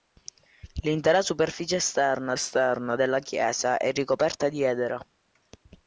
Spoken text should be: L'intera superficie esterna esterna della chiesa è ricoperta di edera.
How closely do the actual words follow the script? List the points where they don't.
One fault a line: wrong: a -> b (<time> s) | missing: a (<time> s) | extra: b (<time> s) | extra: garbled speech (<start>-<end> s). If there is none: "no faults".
no faults